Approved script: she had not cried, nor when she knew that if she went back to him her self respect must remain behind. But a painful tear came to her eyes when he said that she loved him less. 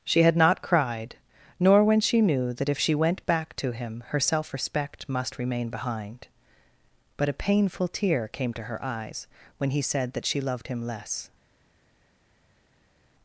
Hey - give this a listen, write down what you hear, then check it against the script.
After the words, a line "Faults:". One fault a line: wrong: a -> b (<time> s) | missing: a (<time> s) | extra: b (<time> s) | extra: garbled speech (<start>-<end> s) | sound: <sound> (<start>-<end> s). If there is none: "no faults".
she had not cried, nor when she knew that if she went back to him her self respect must remain behind. But a painful tear came to her eyes when he said that she loved him less.
Faults:
no faults